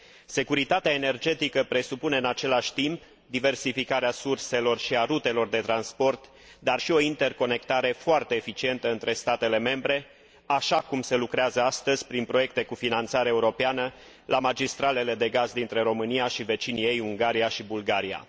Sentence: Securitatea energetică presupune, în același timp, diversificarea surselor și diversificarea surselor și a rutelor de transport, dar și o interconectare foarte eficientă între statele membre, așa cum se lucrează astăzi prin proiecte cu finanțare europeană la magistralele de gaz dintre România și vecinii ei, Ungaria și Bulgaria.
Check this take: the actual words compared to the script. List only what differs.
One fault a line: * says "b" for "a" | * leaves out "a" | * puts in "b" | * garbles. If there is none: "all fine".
* leaves out "diversificarea surselor și"